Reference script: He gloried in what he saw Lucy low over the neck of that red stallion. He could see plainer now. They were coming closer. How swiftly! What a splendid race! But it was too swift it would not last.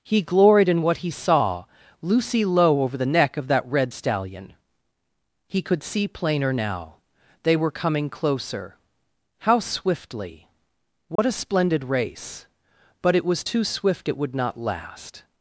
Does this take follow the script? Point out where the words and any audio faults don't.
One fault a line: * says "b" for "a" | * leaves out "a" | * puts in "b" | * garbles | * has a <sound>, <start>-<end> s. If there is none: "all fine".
* has a dropout, 11.2-11.2 s